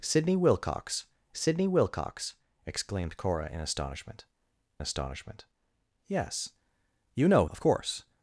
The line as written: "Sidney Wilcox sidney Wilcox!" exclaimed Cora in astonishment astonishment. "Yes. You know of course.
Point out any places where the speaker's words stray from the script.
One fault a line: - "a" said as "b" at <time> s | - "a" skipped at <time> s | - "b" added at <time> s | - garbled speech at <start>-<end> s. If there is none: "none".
none